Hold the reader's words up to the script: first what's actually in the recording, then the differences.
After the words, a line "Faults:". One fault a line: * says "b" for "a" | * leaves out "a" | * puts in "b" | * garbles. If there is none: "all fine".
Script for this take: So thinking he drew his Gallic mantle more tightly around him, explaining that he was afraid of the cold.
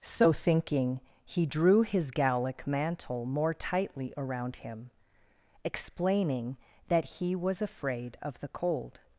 So thinking he drew his Gallic mantle more tightly around him, explaining that he was afraid of the cold.
Faults:
all fine